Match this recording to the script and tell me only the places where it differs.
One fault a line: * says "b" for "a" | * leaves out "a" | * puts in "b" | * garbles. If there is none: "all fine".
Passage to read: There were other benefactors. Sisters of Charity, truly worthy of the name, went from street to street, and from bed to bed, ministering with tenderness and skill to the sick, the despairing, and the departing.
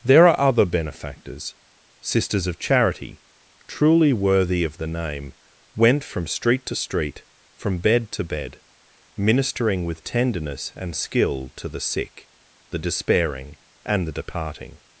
* says "are" for "were"
* leaves out "and"